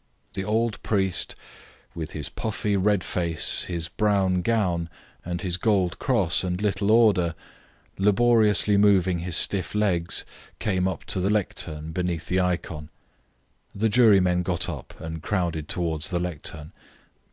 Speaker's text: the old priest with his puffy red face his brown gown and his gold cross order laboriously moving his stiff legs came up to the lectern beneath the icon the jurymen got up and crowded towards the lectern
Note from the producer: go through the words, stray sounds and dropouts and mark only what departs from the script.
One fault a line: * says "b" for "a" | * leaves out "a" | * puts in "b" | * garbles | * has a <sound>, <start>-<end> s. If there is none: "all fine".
* puts in "and little"